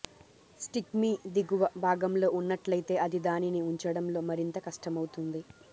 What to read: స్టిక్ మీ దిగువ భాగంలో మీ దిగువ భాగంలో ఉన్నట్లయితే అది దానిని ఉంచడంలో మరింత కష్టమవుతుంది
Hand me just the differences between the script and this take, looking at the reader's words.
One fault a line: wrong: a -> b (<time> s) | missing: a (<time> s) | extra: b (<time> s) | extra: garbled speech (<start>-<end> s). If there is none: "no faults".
missing: మీ దిగువ భాగంలో (2.3 s)